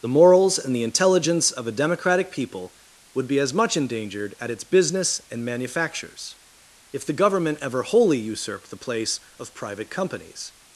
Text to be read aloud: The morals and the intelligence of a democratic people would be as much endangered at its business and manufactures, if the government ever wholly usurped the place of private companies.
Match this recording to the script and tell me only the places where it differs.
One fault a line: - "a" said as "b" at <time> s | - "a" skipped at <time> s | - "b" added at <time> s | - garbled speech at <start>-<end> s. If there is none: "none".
none